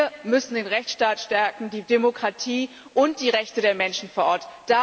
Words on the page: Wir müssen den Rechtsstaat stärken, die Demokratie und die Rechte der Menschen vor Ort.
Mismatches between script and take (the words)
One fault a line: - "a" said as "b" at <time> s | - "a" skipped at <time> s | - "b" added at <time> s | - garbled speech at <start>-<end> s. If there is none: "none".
none